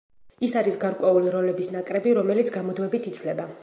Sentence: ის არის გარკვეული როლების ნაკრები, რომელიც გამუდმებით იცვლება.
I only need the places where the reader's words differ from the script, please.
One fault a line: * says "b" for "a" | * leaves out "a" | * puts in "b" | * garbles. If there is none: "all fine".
all fine